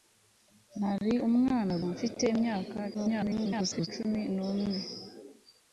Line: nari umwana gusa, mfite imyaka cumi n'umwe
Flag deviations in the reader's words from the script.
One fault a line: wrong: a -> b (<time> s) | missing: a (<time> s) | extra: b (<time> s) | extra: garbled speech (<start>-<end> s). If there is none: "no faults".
missing: gusa (1.7 s)
extra: garbled speech (2.9-3.9 s)